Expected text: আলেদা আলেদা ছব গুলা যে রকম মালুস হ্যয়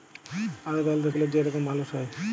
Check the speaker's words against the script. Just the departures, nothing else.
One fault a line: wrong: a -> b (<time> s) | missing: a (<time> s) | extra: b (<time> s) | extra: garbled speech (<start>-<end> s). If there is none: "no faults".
missing: ছব (1.1 s)